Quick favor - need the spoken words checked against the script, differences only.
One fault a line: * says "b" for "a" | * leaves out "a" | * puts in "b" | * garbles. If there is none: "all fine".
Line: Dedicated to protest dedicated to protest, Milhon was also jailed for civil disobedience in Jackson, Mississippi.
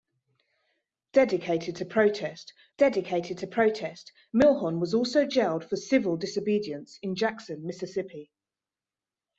all fine